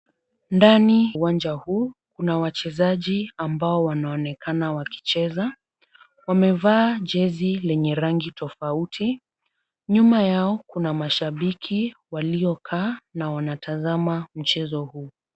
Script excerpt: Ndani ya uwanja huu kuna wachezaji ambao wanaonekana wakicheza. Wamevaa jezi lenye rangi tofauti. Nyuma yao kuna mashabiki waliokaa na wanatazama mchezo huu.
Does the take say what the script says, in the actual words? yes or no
no